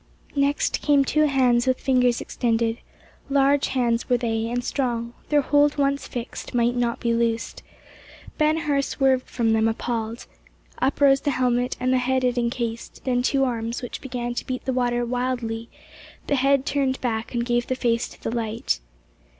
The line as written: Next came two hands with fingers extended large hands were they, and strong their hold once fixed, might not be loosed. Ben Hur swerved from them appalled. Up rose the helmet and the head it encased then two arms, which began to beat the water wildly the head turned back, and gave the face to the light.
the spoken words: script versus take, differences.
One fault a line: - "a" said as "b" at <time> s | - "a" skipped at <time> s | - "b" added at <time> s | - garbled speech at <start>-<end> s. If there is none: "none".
none